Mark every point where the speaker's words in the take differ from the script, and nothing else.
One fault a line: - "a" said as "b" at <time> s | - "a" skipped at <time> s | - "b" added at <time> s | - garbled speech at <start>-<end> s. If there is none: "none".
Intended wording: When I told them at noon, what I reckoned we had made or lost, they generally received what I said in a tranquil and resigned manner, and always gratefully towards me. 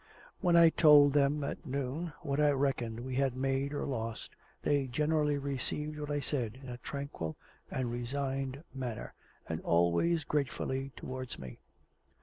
none